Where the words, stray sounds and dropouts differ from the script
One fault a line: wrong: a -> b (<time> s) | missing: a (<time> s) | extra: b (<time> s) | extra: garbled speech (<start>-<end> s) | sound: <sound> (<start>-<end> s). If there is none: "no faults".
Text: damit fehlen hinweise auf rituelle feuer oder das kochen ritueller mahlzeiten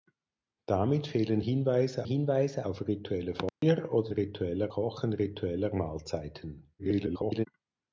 extra: hinweise (2.0 s)
sound: dropout (3.5-3.6 s)
wrong: das -> ritueller (4.1 s)
extra: garbled speech (6.8-7.5 s)